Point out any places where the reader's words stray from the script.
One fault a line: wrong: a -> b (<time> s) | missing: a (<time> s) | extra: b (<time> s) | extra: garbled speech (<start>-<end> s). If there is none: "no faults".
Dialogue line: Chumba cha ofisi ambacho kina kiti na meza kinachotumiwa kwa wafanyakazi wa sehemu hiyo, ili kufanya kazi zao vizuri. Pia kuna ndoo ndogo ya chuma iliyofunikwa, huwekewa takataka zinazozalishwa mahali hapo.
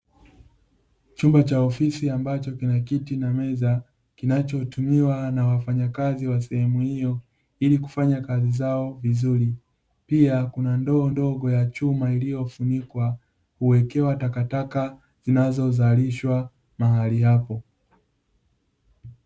wrong: kwa -> na (5.3 s)